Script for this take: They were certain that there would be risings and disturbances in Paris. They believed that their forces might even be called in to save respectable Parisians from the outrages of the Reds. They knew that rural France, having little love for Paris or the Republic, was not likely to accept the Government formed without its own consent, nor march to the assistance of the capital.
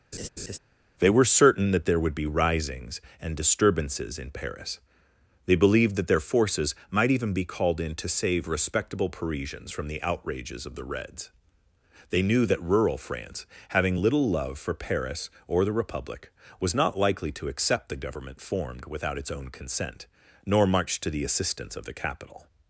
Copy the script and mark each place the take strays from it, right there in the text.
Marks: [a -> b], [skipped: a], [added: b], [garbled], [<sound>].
[laugh] They were certain that there would be risings and disturbances in Paris. They believed that their forces might even be called in to save respectable Parisians from the outrages of the Reds. They knew that rural France, having little love for Paris or the Republic, was not likely to accept the Government formed without its own consent, nor march to the assistance of the capital.